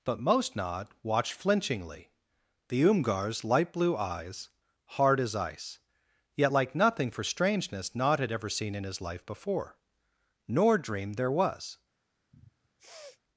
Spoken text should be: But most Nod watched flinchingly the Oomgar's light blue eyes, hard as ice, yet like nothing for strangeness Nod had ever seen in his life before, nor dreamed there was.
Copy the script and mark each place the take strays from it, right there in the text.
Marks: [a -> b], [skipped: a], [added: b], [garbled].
But most Nod watched flinchingly the Oomgar's light blue eyes, hard as ice, yet like nothing for strangeness Nod had ever seen in his life before, nor dreamed there was.